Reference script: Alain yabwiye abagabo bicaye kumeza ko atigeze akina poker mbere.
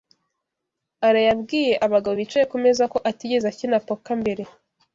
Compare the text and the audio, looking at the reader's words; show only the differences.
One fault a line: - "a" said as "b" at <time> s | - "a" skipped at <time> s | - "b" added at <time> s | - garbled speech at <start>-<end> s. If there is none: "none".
none